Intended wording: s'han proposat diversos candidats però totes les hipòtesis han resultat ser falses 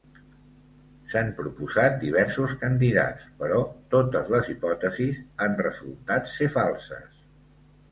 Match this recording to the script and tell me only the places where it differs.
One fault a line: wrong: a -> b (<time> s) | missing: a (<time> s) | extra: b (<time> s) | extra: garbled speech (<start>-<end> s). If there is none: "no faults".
no faults